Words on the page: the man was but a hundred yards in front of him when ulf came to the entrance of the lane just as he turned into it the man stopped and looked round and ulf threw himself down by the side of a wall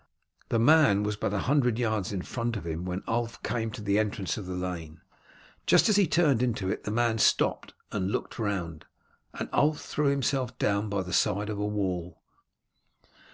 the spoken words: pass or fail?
pass